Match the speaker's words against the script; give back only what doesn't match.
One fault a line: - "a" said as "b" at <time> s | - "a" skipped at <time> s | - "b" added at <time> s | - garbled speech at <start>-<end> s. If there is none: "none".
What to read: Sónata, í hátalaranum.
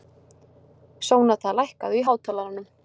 - "lækkaðu" added at 1.6 s